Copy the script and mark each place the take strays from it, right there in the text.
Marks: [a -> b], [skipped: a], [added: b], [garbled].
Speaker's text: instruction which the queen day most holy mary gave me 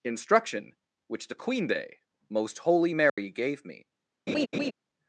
instruction which the queen day most holy mary gave me